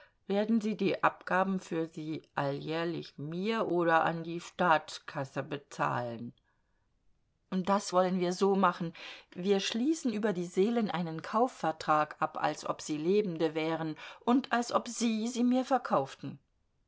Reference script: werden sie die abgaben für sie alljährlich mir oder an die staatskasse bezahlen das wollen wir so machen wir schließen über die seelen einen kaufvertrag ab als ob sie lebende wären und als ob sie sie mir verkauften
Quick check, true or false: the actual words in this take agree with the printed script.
true